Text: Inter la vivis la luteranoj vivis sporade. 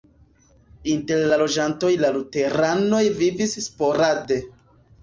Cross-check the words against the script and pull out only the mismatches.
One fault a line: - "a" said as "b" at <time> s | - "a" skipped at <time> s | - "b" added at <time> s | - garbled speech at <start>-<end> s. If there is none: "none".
- "vivis" said as "loĝantoj" at 1.4 s